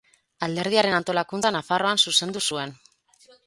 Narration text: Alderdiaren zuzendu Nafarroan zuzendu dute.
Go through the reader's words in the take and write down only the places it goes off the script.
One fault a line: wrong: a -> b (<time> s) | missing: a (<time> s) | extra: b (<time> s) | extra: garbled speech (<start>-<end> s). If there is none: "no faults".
wrong: zuzendu -> antolakuntza (1.0 s)
wrong: dute -> zuen (2.5 s)